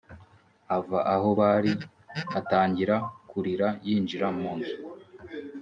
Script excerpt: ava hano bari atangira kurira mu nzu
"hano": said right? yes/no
no